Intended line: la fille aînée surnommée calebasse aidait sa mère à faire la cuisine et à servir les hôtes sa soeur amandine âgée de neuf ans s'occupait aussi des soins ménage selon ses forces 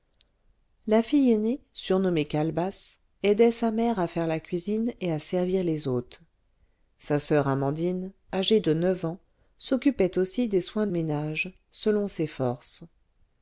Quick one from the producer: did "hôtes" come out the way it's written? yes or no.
yes